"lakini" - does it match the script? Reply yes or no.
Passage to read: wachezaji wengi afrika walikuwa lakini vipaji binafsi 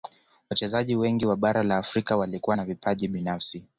no